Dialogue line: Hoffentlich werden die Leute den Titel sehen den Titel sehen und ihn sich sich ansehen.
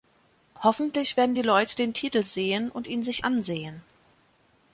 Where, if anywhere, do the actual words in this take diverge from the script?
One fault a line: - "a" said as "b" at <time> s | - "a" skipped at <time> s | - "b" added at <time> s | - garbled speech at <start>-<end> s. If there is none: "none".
- "den Titel sehen" skipped at 2.7 s
- "sich" skipped at 3.3 s